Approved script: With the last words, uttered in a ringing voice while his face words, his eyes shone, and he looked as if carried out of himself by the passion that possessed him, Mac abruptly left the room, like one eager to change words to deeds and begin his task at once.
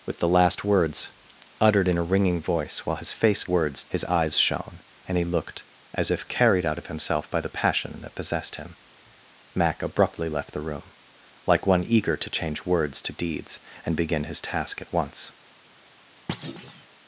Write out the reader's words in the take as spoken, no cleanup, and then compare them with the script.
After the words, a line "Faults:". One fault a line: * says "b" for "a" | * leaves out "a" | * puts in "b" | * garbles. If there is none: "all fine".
With the last words, uttered in a ringing voice while his face words, his eyes shone, and he looked as if carried out of himself by the passion that possessed him, Mac abruptly left the room, like one eager to change words to deeds and begin his task at once.
Faults:
all fine